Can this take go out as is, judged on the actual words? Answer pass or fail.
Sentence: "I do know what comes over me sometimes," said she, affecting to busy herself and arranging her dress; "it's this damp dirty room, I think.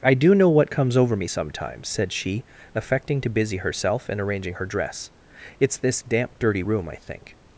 pass